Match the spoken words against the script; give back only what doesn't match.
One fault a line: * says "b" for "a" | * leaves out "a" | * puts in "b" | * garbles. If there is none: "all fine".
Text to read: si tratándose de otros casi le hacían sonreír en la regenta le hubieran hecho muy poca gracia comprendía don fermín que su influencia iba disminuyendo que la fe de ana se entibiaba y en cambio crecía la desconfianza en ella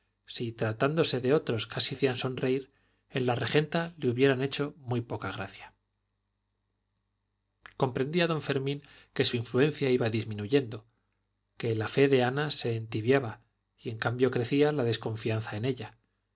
* leaves out "le"